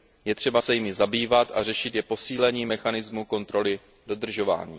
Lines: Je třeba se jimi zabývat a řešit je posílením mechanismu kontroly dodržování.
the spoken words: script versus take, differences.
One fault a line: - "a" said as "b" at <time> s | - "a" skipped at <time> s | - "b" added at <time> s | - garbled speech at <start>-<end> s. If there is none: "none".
none